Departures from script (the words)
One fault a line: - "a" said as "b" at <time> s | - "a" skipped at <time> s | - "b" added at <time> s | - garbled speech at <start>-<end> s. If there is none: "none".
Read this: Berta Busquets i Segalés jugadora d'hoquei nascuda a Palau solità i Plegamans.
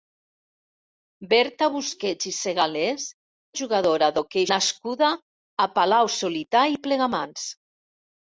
none